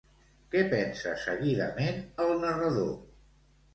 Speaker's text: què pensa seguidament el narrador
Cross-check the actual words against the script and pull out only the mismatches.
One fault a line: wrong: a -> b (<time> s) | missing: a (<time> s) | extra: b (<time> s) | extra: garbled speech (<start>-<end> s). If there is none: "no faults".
no faults